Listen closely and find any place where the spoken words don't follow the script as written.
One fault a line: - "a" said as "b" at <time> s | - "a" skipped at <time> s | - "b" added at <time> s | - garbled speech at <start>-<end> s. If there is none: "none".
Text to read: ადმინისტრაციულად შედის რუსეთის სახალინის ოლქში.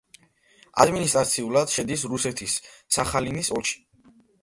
none